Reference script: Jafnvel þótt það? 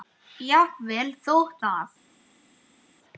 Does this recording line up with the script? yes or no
yes